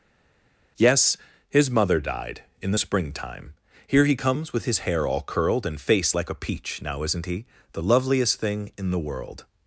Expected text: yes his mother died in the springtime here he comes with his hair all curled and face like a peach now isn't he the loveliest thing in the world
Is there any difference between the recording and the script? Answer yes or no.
no